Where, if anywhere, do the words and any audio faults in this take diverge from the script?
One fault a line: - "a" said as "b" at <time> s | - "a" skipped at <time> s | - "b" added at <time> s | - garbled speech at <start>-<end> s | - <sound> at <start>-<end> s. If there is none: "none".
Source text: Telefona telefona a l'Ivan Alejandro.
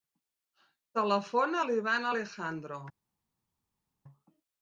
- "telefona" skipped at 1.6 s